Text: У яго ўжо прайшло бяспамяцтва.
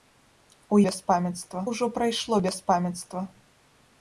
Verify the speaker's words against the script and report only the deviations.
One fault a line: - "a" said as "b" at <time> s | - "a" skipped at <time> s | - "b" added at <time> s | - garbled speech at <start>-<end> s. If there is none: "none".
- "яго" said as "бяспамяцтва" at 0.9 s